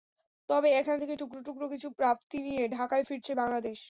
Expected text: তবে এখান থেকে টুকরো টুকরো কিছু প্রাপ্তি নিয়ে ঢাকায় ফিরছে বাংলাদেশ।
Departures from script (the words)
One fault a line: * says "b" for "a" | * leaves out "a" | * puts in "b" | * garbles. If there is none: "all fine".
all fine